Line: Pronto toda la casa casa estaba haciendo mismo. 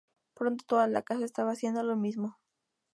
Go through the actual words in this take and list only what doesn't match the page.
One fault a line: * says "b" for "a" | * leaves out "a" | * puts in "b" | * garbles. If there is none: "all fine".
* leaves out "casa"
* puts in "lo"